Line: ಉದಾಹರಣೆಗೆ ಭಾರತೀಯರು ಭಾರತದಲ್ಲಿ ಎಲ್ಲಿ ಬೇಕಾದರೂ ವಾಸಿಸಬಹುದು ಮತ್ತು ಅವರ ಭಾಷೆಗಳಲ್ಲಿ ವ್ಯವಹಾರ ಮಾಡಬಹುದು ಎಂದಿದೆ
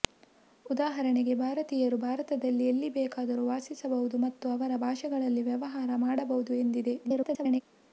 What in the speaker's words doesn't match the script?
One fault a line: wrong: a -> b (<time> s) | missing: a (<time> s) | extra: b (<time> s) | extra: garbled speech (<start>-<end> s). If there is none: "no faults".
extra: garbled speech (7.0-7.6 s)